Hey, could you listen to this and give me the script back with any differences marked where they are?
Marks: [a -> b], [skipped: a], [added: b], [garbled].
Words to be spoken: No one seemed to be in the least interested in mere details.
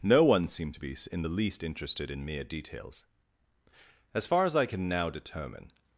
No one seemed to be in the least interested in mere details. [added: As far as I can now determine]